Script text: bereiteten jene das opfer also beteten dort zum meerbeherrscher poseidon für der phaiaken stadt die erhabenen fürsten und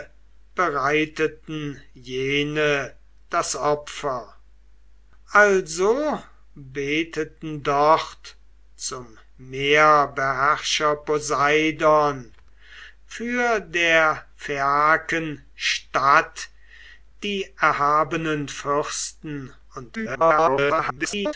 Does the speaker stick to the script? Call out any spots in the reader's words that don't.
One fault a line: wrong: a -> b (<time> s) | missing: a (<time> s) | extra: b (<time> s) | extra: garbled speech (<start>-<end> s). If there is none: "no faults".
extra: garbled speech (19.9-21.3 s)